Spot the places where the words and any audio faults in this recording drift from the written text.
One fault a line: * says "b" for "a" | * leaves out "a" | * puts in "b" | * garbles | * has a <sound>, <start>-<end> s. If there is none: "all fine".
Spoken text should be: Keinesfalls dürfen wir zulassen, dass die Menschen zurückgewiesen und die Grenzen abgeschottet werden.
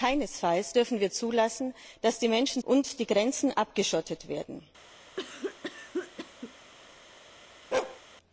* leaves out "zurückgewiesen"
* has a cough, 5.2-6.5 s
* has a bark, 7.7-8.0 s